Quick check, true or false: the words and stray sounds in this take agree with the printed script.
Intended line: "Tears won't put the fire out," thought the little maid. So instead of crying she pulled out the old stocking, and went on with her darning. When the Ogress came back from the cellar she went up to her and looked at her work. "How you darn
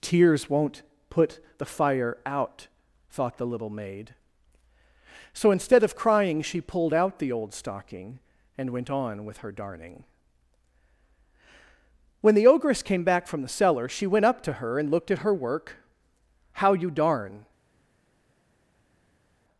true